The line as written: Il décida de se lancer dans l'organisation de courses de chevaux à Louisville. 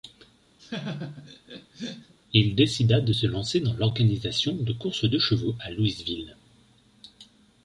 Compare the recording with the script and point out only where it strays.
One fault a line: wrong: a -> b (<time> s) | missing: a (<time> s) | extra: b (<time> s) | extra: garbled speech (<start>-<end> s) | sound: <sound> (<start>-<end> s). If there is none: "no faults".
sound: laugh (0.6-2.1 s)